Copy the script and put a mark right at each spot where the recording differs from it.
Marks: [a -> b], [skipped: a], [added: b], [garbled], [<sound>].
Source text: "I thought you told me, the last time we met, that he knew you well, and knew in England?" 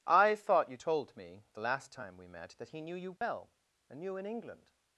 "I thought you told me, the last time we met, that he knew you well, [dropout] and knew in England?"